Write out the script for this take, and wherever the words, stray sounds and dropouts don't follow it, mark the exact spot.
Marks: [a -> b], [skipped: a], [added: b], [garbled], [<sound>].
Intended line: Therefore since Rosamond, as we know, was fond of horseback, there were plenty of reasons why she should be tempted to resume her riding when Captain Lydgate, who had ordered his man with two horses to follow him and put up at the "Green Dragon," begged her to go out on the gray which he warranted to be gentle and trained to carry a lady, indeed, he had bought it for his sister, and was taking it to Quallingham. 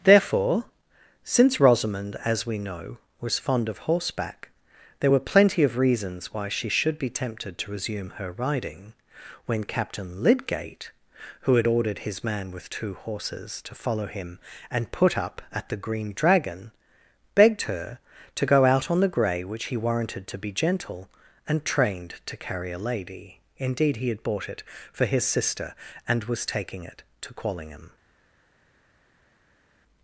Therefore since Rosamond, as we know, was fond of horseback, there were plenty of reasons why she should be tempted to resume her riding when Captain Lydgate, who had ordered his man with two horses to follow him and put up at the "Green Dragon," begged her to go out on the gray which he warranted to be gentle and trained to carry a lady, indeed, he had bought it for his sister, and was taking it to Quallingham.